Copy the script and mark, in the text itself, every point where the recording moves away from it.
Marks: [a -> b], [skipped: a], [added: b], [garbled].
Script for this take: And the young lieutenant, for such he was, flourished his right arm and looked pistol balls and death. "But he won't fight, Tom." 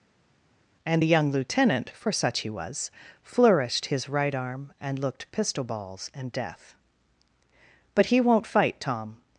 And the young lieutenant, for such he was, flourished his right arm and looked pistol balls and death. "But he won't fight, Tom."